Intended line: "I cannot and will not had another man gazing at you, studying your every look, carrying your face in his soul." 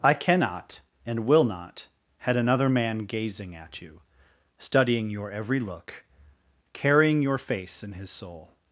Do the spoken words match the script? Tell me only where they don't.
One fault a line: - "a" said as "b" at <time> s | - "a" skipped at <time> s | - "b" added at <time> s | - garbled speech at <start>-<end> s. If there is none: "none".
none